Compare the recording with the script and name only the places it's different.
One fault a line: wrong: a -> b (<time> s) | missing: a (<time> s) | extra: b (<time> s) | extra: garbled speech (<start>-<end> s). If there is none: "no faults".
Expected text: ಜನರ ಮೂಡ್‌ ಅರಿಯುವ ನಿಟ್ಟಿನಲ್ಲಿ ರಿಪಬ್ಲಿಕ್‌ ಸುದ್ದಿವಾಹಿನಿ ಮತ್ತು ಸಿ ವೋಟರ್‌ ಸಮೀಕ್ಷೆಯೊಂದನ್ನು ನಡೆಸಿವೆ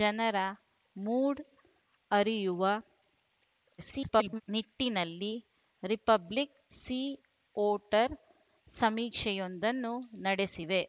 extra: garbled speech (3.8-4.4 s)
missing: ಸುದ್ದಿವಾಹಿನಿ ಮತ್ತು (6.6 s)